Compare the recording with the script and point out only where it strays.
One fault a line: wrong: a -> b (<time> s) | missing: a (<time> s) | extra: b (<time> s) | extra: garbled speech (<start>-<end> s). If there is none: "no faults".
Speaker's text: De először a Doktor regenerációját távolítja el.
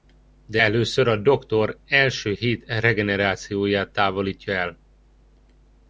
extra: első hét (1.9 s)